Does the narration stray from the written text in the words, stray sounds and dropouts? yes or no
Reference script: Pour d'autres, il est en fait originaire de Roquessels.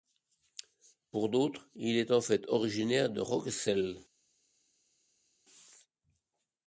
no